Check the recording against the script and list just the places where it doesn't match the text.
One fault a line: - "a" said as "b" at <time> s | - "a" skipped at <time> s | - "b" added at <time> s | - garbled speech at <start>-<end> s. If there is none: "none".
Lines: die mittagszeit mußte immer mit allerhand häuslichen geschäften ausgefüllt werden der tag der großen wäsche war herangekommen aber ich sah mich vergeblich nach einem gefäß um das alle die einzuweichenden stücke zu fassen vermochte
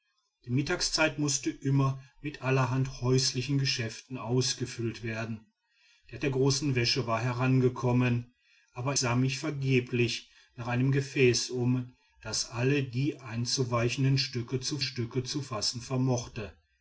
- "tag" skipped at 6.2 s
- "ich" skipped at 8.9 s
- "stücke zu" added at 14.8 s